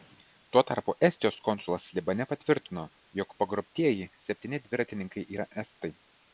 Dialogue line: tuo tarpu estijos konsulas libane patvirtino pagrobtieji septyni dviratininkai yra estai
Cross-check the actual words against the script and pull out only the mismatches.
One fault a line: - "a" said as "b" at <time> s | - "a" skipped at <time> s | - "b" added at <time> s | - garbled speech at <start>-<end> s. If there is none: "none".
- "jog" added at 3.2 s